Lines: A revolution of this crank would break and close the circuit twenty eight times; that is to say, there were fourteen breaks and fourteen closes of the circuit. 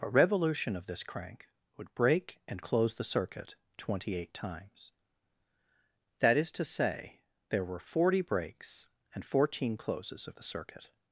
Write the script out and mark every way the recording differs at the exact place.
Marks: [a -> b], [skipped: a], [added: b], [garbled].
A revolution of this crank would break and close the circuit twenty eight times; that is to say, there were [fourteen -> forty] breaks and fourteen closes of the circuit.